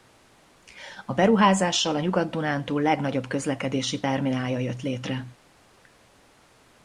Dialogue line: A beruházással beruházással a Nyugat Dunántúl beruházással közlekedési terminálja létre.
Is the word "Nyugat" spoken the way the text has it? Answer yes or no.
yes